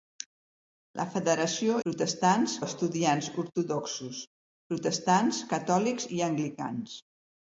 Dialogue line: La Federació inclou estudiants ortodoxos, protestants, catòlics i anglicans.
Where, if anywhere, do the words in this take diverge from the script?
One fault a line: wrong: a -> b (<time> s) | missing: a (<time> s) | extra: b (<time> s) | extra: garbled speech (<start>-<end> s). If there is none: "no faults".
wrong: inclou -> protestants (1.9 s)